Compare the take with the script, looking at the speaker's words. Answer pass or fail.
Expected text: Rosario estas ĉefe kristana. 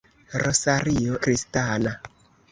fail